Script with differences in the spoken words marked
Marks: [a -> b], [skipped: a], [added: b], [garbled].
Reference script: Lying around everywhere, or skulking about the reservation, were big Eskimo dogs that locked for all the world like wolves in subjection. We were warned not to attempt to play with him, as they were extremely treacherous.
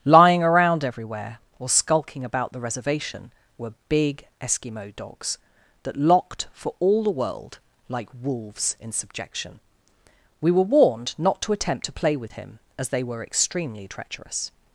Lying around everywhere, or skulking about the reservation, were big Eskimo dogs that locked for all the world like wolves in subjection. We were warned not to attempt to play with him, as they were extremely treacherous.